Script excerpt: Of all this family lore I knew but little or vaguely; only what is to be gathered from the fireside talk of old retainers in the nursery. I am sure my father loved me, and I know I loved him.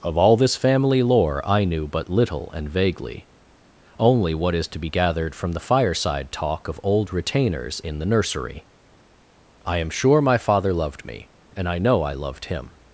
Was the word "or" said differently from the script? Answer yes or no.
yes